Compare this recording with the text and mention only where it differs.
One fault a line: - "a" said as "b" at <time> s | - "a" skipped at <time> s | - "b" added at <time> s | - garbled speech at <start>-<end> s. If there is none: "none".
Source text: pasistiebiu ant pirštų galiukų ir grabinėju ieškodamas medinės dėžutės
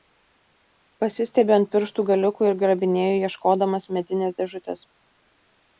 none